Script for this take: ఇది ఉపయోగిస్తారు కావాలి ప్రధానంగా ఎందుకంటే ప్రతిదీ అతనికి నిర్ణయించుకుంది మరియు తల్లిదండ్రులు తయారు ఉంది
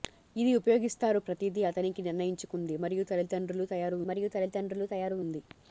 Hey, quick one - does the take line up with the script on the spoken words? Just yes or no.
no